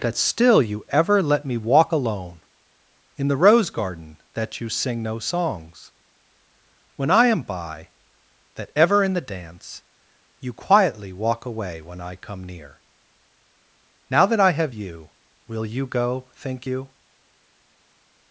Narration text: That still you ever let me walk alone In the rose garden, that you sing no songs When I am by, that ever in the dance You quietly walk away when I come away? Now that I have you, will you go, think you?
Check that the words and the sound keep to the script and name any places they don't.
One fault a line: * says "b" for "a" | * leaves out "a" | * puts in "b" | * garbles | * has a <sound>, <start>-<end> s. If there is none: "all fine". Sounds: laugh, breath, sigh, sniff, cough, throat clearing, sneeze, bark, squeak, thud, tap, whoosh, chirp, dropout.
* says "near" for "away"